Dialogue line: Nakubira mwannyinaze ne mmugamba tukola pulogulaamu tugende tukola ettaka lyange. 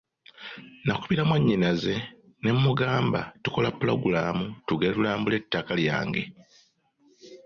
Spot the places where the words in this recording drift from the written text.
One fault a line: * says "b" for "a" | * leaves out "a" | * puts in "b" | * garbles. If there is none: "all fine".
* says "tulambule" for "tukola"